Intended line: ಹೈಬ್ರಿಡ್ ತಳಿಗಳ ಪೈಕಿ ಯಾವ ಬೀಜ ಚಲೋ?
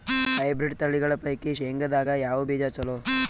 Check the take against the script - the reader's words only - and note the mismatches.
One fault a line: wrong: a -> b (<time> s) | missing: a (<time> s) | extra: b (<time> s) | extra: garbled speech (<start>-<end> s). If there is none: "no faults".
extra: ಶೇಂಗದಾಗ (1.5 s)